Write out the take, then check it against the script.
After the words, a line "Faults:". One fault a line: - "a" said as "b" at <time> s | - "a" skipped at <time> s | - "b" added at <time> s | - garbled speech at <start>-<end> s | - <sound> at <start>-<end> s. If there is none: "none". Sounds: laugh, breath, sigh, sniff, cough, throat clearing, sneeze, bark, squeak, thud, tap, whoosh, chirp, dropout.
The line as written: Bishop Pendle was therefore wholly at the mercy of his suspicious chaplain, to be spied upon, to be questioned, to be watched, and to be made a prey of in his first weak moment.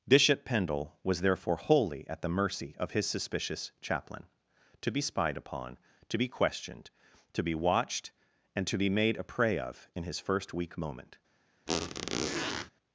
Bishop Pendle was therefore wholly at the mercy of his suspicious chaplain, to be spied upon, to be questioned, to be watched, and to be made a prey of in his first weak moment.
Faults:
- squeak at 11.7-12.7 s